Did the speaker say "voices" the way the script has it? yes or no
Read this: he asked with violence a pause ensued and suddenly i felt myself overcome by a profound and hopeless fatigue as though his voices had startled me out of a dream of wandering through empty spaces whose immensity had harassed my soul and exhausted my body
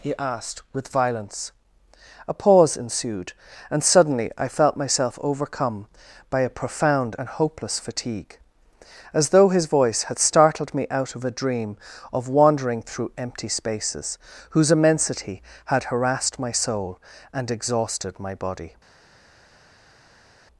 no